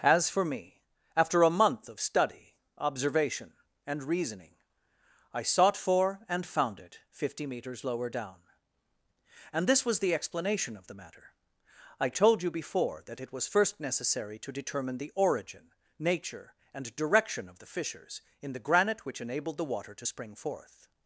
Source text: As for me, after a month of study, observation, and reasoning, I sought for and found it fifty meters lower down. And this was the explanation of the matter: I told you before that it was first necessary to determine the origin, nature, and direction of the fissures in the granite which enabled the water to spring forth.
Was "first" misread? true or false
false